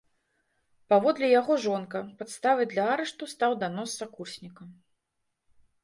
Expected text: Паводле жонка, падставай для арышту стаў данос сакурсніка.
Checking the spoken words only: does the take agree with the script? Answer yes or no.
no